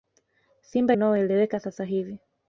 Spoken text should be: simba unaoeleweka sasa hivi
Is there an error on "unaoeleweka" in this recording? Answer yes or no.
no